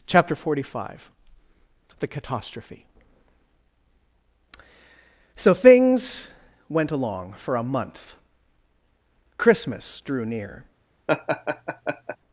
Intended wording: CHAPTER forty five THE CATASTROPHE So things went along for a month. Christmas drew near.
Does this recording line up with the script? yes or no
yes